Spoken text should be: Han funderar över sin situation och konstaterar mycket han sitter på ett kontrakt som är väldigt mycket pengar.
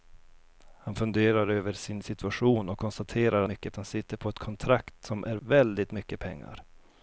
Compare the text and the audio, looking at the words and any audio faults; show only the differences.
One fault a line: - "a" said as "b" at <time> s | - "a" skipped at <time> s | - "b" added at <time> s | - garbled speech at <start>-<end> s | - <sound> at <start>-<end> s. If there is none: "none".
none